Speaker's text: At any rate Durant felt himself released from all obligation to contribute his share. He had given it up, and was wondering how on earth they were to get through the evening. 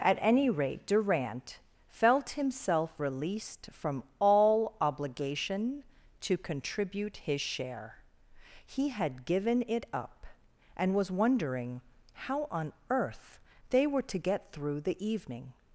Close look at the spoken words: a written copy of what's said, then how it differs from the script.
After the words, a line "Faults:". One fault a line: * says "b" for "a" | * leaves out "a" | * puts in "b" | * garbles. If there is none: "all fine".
At any rate Durant felt himself released from all obligation to contribute his share. He had given it up, and was wondering how on earth they were to get through the evening.
Faults:
all fine